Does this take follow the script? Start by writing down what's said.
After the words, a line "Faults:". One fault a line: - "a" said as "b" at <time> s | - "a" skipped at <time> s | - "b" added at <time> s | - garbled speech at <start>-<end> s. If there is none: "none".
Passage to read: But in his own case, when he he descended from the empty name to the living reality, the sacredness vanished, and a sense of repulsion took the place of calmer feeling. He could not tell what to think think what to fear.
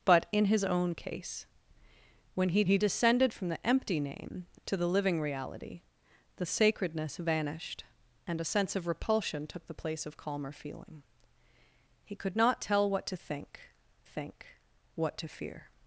But in his own case, when he he descended from the empty name to the living reality, the sacredness vanished, and a sense of repulsion took the place of calmer feeling. He could not tell what to think think what to fear.
Faults:
none